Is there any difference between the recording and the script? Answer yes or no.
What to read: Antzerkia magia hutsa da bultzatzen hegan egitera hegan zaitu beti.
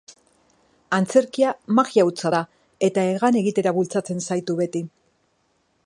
yes